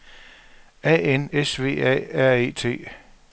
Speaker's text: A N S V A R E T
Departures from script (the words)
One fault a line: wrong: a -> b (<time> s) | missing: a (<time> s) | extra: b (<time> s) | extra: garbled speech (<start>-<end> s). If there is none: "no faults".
no faults